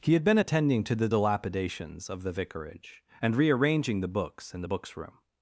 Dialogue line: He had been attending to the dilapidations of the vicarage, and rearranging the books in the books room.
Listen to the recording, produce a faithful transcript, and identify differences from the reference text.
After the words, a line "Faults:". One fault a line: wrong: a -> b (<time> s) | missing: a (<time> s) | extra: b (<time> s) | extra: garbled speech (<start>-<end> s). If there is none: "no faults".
He had been attending to the dilapidations of the vicarage, and rearranging the books in the books room.
Faults:
no faults